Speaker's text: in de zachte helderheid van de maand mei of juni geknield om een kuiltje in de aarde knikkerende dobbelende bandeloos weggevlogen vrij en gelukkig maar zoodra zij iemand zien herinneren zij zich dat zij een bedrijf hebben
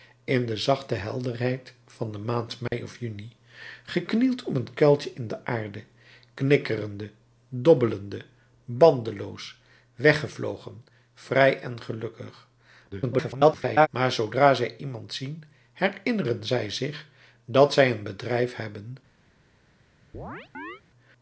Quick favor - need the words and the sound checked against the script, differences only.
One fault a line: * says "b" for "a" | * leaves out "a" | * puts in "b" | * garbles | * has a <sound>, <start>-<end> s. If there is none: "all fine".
* has a dropout, 2.7-2.7 s
* garbles
* has a chirp, 20.1-20.8 s